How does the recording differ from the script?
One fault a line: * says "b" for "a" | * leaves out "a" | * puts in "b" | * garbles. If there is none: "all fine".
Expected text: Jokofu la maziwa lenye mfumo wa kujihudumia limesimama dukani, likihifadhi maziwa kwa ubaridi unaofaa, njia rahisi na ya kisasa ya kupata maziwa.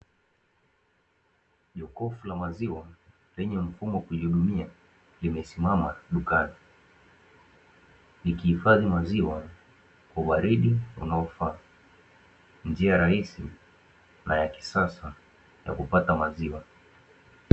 all fine